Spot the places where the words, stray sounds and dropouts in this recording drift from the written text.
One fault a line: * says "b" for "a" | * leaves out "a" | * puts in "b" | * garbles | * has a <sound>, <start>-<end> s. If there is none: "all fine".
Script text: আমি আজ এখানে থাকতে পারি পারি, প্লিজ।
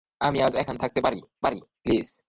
all fine